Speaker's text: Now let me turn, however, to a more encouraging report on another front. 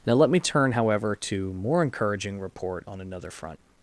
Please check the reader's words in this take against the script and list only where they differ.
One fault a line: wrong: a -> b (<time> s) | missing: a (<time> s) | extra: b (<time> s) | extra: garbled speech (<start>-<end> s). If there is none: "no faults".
missing: a (1.5 s)